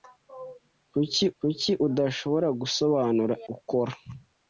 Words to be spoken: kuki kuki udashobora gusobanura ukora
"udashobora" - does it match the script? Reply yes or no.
yes